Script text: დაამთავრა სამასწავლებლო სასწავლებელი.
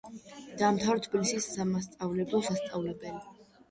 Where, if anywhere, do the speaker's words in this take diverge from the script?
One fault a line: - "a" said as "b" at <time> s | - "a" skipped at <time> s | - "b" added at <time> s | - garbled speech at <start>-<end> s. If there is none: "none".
- "თბილისის" added at 1.1 s